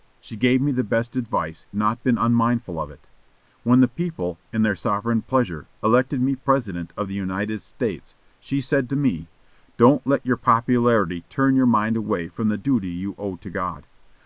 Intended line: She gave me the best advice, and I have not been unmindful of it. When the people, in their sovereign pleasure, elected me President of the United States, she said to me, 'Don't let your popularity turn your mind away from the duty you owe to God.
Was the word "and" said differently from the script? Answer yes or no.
yes